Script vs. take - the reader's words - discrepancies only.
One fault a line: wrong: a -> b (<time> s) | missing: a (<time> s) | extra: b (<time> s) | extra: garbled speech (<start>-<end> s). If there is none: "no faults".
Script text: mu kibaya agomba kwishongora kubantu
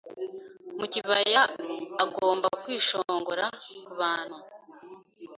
no faults